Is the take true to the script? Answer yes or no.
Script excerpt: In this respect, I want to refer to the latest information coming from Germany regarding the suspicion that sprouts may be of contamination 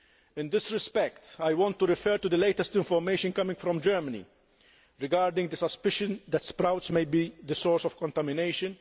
no